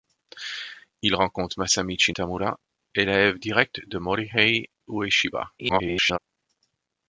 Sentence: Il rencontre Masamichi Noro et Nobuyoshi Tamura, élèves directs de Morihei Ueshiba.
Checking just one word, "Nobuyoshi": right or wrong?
wrong